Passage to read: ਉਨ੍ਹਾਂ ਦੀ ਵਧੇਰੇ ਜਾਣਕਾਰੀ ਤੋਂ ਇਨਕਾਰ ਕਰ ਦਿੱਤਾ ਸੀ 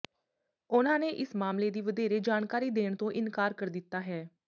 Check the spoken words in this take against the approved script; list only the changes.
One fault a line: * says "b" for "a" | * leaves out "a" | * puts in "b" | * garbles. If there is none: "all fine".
* puts in "ਨੇ ਇਸ ਮਾਮਲੇ"
* puts in "ਦੇਣ"
* says "ਹੈ" for "ਸੀ"